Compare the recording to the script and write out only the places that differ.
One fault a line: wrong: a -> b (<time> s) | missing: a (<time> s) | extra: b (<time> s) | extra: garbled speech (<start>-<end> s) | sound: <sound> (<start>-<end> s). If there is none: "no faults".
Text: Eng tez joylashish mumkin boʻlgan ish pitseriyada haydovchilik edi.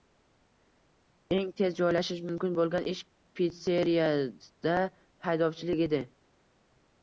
no faults